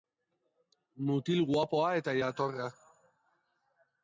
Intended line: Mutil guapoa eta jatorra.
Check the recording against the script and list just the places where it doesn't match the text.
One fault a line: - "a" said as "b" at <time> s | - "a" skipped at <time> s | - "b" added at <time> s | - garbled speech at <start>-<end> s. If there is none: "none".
none